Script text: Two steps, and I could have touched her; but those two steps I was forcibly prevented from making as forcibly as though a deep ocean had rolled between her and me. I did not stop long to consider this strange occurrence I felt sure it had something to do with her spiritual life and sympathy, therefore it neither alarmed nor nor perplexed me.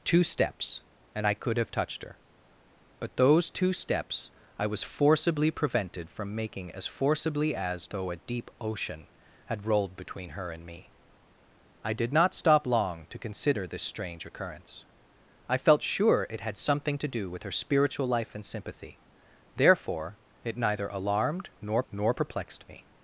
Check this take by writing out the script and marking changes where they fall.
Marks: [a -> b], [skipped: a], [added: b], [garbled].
Two steps, and I could have touched her; but those two steps I was forcibly prevented from making as forcibly as though a deep ocean had rolled between her and me. I did not stop long to consider this strange occurrence I felt sure it had something to do with her spiritual life and sympathy, therefore it neither alarmed nor nor perplexed me.